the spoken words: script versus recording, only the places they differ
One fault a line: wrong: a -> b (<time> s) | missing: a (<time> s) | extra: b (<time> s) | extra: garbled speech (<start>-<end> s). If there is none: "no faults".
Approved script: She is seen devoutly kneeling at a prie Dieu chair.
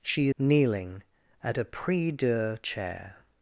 missing: is seen devoutly (0.3 s)